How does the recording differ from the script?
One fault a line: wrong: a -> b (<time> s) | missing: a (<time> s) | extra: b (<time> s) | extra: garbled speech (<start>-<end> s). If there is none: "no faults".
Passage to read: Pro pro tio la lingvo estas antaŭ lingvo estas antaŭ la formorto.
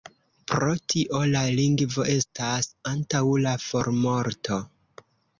missing: pro (0.7 s)
missing: lingvo estas antaŭ (3.2 s)